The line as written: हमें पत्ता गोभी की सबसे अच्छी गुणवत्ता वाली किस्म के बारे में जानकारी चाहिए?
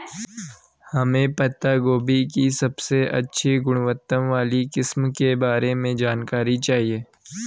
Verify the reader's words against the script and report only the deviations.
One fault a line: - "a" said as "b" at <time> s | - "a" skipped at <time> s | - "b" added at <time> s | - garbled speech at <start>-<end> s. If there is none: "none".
none